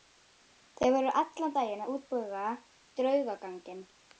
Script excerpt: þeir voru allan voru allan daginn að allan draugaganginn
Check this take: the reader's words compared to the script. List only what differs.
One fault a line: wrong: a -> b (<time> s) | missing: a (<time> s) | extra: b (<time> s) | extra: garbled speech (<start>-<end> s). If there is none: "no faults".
missing: voru allan (1.5 s)
wrong: allan -> útbúa (1.9 s)